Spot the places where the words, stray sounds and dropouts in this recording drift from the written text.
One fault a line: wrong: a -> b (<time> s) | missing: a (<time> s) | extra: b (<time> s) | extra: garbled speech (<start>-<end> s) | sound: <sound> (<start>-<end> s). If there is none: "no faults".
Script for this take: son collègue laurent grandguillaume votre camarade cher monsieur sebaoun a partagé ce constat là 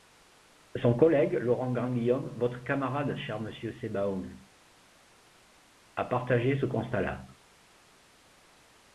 no faults